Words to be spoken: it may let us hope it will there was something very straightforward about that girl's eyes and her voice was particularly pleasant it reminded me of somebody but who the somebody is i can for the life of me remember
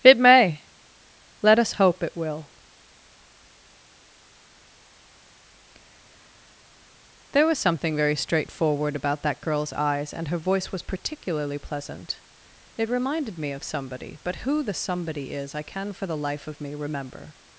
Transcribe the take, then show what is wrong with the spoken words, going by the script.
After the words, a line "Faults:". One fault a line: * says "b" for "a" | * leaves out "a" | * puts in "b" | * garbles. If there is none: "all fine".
it may let us hope it will there was something very straightforward about that girl's eyes and her voice was particularly pleasant it reminded me of somebody but who the somebody is i can for the life of me remember
Faults:
all fine